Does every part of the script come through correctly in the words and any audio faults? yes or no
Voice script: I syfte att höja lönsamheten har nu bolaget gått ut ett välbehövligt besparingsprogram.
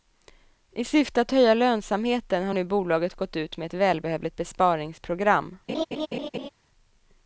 no